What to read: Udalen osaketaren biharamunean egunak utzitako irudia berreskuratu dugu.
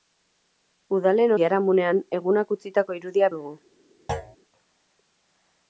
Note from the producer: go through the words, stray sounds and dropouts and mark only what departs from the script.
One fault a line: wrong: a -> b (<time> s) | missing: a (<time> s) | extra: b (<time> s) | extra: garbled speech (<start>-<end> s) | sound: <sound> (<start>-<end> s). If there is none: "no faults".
missing: osaketaren (1.3 s)
missing: berreskuratu (3.3 s)
sound: thud (4.1-4.4 s)